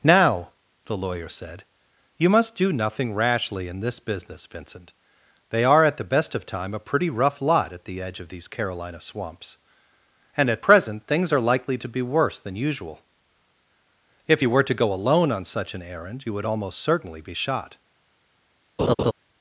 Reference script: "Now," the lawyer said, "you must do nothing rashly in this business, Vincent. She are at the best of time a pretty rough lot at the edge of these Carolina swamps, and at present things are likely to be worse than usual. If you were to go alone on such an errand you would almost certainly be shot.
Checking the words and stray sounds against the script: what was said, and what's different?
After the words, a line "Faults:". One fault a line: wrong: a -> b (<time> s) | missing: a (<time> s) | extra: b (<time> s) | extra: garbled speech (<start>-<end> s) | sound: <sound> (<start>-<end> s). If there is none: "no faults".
"Now," the lawyer said, "you must do nothing rashly in this business, Vincent. They are at the best of time a pretty rough lot at the edge of these Carolina swamps, and at present things are likely to be worse than usual. If you were to go alone on such an errand you would almost certainly be shot.
Faults:
wrong: She -> They (5.5 s)
sound: laugh (18.8-19.1 s)